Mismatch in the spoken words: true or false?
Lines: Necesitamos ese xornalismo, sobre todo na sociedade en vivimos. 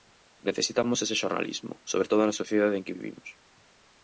true